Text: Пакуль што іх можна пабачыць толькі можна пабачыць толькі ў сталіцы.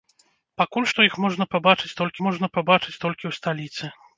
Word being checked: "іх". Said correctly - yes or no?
yes